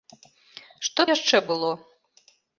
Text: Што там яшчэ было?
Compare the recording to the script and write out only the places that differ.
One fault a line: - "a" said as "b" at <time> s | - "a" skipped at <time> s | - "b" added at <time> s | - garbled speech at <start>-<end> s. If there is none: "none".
- "там" skipped at 1.0 s